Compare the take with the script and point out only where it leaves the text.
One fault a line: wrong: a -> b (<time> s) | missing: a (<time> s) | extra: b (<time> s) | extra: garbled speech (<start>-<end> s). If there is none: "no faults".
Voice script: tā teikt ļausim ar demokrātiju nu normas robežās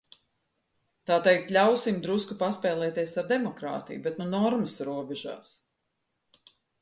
extra: drusku paspēlēties (2.1 s)
extra: bet (4.1 s)